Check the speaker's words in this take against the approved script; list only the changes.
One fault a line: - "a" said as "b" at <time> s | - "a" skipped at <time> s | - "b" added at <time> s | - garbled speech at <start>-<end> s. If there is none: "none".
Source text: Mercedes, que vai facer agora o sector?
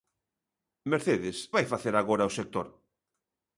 - "que" skipped at 1.4 s